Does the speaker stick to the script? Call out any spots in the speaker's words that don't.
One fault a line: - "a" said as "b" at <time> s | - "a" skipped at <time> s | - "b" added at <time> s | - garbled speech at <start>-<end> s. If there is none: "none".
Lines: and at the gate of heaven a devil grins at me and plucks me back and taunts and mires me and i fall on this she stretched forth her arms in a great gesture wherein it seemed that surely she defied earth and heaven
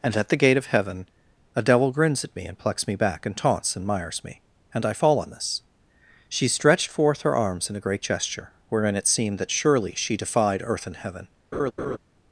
none